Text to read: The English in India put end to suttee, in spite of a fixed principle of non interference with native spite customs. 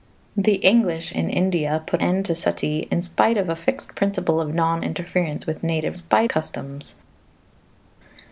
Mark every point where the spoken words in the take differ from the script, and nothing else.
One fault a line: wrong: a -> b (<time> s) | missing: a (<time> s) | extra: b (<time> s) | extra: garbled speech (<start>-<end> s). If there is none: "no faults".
no faults